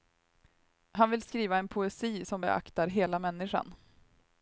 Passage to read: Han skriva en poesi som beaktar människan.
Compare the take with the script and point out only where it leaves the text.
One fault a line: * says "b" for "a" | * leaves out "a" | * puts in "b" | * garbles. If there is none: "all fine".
* puts in "vill"
* puts in "hela"